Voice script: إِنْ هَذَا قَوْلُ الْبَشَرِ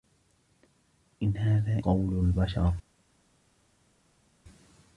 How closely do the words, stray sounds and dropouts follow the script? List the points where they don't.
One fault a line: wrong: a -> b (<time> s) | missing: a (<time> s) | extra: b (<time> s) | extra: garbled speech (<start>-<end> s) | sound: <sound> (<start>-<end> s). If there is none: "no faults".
no faults